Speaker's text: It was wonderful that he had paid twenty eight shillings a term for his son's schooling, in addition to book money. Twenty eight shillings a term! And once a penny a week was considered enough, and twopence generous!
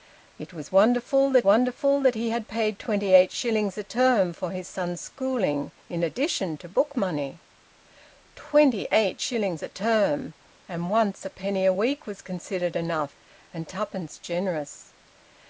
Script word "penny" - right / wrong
right